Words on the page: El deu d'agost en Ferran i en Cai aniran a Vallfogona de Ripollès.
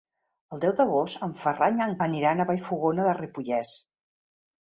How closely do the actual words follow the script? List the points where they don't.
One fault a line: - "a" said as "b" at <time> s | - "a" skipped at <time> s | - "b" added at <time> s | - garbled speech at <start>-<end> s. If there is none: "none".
- "Cai" skipped at 1.9 s